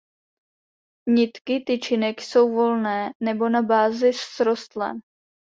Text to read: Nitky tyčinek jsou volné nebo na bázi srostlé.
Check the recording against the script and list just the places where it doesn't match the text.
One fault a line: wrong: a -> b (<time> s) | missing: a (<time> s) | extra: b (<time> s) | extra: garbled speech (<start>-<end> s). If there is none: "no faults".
no faults